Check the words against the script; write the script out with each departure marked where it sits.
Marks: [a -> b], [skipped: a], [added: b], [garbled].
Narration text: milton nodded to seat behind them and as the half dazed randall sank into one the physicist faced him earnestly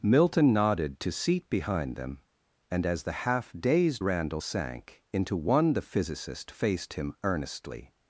milton nodded to seat behind them and as the half dazed randall sank into one the physicist faced him earnestly